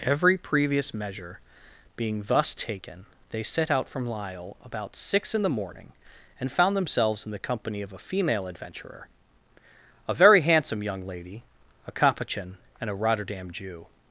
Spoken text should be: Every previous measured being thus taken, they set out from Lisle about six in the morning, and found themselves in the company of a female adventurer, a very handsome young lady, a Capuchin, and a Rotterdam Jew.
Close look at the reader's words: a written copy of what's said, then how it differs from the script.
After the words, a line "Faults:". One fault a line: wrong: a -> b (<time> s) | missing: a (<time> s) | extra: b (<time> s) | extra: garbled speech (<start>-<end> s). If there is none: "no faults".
Every previous measure being thus taken, they set out from Lisle about six in the morning, and found themselves in the company of a female adventurer, a very handsome young lady, a Capuchin, and a Rotterdam Jew.
Faults:
wrong: measured -> measure (0.9 s)